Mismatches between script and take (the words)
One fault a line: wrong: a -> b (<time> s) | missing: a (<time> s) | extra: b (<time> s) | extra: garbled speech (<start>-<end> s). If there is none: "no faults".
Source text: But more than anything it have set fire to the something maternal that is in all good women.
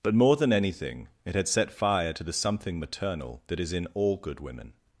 wrong: have -> had (1.4 s)